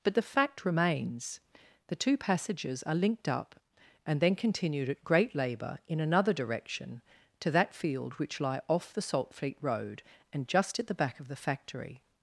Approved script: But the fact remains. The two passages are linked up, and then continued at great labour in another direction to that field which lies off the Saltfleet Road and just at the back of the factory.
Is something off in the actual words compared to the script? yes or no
yes